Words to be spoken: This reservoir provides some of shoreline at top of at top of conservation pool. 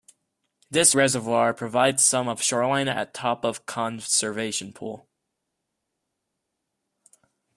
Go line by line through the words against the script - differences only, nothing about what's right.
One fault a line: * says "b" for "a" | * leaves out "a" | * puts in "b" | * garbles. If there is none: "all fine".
* leaves out "at top of"